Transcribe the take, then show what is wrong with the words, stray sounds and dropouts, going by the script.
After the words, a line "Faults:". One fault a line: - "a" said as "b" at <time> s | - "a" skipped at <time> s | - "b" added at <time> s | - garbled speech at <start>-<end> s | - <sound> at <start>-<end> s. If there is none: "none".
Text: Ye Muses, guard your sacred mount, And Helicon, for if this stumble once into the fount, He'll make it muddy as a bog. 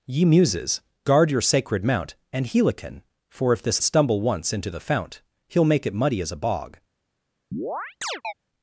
Ye Muses, guard your sacred mount, And Helicon, for if this stumble once into the fount, He'll make it muddy as a bog.
Faults:
- chirp at 7.5-8.3 s